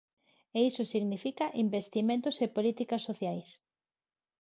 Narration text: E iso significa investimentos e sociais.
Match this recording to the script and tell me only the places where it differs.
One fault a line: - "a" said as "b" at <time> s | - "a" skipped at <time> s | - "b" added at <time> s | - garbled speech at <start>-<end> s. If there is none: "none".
- "políticas" added at 2.5 s